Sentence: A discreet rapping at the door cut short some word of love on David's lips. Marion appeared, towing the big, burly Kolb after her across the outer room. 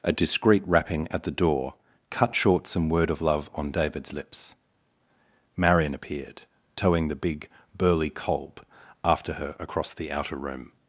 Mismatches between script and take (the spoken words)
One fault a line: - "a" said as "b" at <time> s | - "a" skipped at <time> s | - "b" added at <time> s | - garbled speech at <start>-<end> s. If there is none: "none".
none